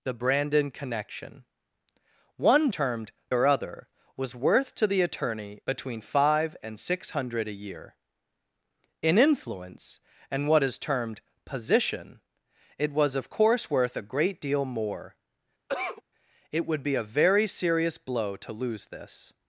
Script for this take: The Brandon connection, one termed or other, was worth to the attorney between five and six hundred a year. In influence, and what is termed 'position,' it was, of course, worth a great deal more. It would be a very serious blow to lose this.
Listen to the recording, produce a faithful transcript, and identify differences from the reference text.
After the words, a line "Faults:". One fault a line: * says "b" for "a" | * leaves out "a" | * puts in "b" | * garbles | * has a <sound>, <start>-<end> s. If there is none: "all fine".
The Brandon connection, one termed or other, was worth to the attorney between five and six hundred a year. In influence, and what is termed 'position,' it was, of course, worth a great deal more. It would be a very serious blow to lose this.
Faults:
* has a cough, 15.7-16.0 s